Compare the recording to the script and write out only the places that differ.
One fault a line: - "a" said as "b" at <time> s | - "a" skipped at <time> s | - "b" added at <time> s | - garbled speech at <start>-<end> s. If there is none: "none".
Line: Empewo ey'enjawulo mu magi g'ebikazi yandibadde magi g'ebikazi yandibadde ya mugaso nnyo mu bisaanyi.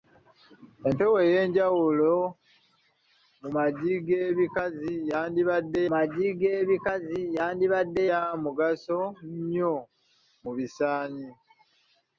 none